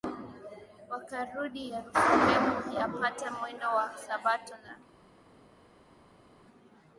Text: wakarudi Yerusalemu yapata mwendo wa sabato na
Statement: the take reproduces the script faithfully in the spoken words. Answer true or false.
true